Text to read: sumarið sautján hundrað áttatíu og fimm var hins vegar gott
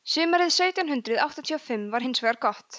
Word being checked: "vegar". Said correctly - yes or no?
yes